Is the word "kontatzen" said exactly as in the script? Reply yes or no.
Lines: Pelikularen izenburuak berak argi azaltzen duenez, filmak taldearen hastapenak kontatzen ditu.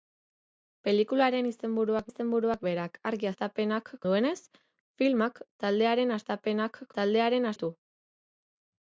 no